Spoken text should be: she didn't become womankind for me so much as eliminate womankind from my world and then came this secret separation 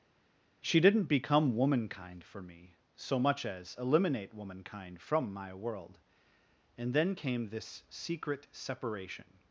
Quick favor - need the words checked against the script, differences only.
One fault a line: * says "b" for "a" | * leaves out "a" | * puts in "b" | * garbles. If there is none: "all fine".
all fine